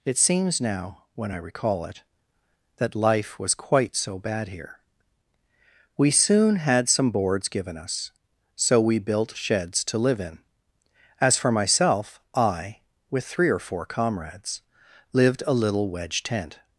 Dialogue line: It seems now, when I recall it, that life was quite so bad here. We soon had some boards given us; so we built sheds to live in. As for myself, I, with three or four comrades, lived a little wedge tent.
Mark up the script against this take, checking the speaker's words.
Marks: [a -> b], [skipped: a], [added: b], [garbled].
It seems now, when I recall it, that life was quite so bad here. We soon had some boards given us; so we built sheds to live in. As for myself, I, with three or four comrades, lived a little wedge tent.